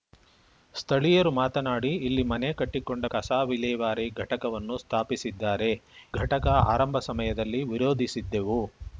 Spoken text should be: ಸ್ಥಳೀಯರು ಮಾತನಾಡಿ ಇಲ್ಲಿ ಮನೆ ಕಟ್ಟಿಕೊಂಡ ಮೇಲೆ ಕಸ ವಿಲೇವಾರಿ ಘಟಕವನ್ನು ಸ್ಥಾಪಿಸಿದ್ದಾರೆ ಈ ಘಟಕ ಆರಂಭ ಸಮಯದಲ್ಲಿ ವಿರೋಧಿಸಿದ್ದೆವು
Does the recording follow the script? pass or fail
fail